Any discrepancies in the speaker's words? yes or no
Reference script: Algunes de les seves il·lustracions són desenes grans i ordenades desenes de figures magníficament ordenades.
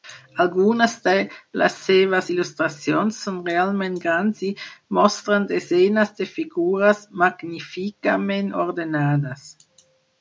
yes